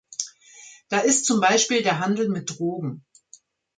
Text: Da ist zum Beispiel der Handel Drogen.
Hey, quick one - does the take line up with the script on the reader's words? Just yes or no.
no